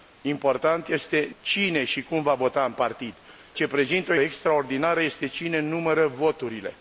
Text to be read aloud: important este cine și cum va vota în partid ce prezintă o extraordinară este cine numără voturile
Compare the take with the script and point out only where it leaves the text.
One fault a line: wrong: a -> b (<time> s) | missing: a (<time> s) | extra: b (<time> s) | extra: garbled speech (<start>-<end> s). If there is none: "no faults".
no faults